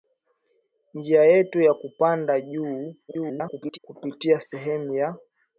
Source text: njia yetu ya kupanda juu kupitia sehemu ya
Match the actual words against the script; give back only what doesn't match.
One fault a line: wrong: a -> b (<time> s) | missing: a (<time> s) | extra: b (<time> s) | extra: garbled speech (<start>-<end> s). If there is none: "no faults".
extra: garbled speech (3.1-3.8 s)